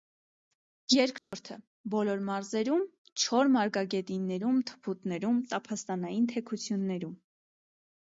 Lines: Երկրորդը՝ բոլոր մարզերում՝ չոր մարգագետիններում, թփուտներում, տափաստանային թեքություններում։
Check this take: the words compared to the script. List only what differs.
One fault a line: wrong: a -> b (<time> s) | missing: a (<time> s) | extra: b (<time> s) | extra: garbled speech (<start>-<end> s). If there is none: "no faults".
no faults